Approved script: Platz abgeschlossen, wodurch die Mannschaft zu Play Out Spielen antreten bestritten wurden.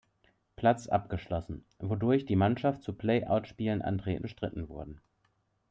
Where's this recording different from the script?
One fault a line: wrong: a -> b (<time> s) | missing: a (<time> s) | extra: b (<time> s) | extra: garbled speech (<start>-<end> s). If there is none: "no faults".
no faults